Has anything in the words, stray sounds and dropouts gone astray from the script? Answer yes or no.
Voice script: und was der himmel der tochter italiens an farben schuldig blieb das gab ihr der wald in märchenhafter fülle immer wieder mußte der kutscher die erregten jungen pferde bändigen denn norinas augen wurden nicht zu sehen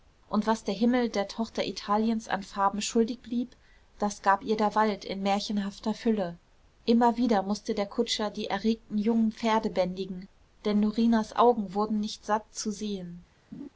yes